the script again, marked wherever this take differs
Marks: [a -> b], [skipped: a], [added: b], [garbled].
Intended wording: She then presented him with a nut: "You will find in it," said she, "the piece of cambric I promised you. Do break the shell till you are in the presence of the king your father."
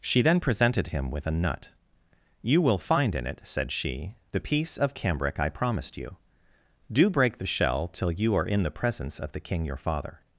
She then presented him with a nut: "You will find in it," said she, "the piece of cambric I promised you. Do break the shell till you are in the presence of the king your father."